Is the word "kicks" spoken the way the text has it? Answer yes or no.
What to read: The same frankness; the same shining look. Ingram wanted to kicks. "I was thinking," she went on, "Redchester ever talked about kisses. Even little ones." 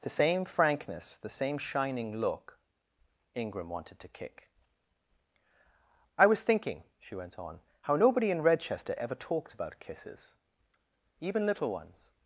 no